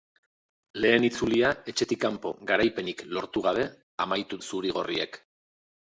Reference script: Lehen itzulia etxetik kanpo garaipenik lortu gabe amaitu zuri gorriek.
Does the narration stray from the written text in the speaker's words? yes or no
no